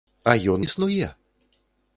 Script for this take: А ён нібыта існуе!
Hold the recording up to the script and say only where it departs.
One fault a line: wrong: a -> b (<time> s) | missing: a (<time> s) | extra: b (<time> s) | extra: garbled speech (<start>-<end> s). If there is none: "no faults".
missing: нібыта (0.6 s)